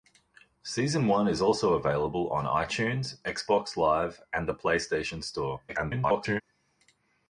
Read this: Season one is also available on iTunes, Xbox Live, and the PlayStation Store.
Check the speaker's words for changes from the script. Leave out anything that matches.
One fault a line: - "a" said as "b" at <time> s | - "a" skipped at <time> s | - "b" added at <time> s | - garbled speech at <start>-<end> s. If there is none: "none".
- garbled speech at 5.7-6.4 s